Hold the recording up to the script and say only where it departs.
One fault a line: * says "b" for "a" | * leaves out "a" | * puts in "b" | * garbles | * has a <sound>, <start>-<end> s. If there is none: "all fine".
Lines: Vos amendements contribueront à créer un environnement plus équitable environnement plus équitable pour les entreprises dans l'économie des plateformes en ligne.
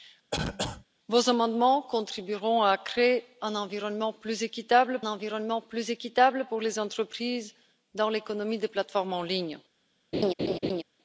* has a cough, 0.3-0.8 s
* has a laugh, 10.1-10.8 s